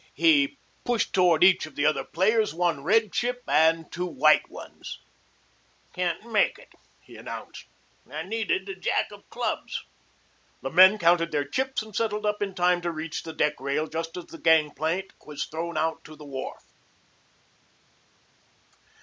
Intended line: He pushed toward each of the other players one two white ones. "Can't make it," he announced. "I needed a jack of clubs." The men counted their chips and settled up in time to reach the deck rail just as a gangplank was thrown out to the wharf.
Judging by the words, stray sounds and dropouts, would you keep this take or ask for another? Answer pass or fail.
fail